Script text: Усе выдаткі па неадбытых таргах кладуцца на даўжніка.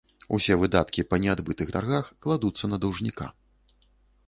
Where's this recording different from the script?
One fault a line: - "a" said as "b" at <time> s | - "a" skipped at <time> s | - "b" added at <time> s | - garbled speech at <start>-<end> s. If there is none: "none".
none